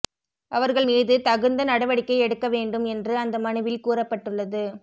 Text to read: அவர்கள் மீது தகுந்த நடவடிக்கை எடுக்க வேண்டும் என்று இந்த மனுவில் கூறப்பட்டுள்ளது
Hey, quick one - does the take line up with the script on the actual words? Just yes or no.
no